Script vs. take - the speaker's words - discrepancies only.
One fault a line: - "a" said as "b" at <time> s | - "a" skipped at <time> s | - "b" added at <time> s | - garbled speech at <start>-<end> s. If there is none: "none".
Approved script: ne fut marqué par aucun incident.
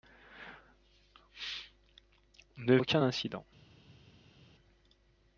- "fut marqué par" skipped at 2.8 s